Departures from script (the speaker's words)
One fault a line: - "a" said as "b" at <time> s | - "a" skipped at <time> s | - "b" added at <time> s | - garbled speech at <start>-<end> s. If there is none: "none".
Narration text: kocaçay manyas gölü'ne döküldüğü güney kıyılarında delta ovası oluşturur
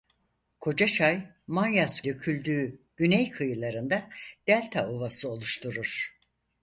- "gölü'ne" skipped at 2.0 s